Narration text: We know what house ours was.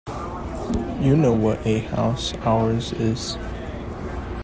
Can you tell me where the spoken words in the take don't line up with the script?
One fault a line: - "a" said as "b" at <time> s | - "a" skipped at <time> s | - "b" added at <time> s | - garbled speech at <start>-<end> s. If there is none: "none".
- "We" said as "You" at 1.0 s
- "a" added at 1.7 s
- "was" said as "is" at 3.0 s